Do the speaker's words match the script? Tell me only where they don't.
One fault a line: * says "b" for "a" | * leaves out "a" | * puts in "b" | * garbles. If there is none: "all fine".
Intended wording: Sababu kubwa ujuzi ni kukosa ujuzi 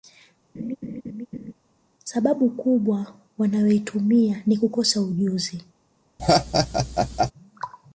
* says "wanayoitumia" for "ujuzi"